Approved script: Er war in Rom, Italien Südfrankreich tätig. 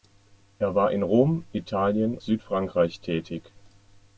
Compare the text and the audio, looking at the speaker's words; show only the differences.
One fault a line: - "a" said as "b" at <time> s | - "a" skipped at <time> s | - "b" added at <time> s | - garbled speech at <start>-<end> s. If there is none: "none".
none